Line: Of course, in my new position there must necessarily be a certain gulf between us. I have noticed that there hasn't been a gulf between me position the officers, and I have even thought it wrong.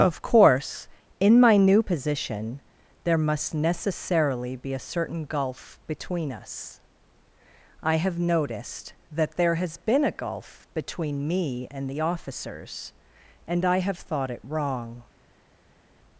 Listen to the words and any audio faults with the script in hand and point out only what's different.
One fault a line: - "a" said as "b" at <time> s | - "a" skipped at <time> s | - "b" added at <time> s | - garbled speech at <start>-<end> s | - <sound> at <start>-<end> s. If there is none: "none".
- "hasn't" said as "has" at 9.6 s
- "position" said as "and" at 11.7 s
- "even" skipped at 14.0 s